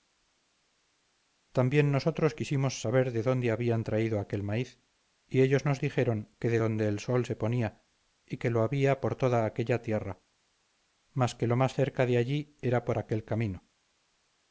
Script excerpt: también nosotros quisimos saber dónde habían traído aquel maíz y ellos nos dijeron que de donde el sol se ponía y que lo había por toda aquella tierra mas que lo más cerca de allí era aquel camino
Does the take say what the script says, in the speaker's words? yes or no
no